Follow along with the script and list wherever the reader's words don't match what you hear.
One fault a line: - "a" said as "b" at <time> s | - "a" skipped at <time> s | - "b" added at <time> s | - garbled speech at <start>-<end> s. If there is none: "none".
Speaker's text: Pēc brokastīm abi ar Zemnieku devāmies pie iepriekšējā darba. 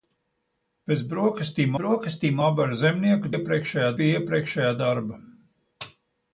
- "brokastīm" added at 1.8 s
- "devāmies" said as "iepriekšējā" at 3.3 s